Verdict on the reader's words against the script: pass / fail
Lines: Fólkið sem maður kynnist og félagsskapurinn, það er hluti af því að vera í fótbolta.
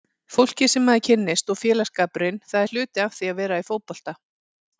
pass